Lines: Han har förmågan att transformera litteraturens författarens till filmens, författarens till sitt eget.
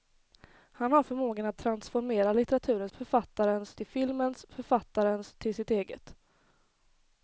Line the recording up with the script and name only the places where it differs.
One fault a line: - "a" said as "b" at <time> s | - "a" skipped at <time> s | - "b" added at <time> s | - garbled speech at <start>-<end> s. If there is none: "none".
none